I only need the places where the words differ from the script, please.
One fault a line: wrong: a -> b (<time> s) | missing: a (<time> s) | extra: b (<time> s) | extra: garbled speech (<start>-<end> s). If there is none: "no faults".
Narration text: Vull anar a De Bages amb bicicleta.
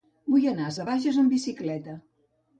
no faults